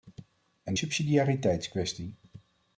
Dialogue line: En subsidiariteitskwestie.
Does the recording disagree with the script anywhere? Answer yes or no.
no